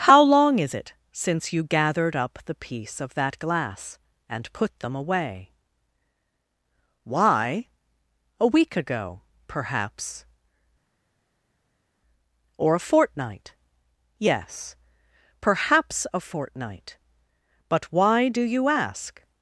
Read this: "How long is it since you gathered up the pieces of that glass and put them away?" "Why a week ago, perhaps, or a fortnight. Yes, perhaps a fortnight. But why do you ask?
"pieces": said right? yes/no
no